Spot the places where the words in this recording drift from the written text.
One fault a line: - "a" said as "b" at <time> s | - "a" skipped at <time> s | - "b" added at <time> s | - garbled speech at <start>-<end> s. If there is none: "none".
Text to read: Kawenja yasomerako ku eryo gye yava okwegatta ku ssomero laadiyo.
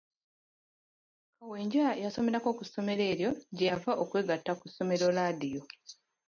- "ssomero" added at 2.7 s